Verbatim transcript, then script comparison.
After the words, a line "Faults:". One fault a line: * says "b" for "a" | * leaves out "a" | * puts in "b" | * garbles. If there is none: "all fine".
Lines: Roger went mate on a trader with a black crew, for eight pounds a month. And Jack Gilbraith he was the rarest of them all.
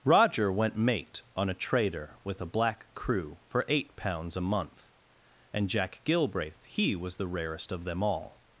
Roger went mate on a trader with a black crew, for eight pounds a month. And Jack Gilbraith he was the rarest of them all.
Faults:
all fine